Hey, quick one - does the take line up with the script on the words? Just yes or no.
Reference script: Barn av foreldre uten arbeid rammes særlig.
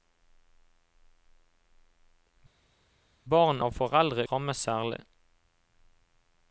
no